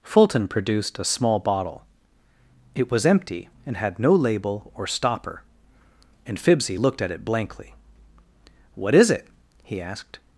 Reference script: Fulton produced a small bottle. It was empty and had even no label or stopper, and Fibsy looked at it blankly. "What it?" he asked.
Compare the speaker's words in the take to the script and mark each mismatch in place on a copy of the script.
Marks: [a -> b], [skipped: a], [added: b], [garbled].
Fulton produced a small bottle. It was empty and had [skipped: even] no label or stopper, and Fibsy looked at it blankly. "What [added: is] it?" he asked.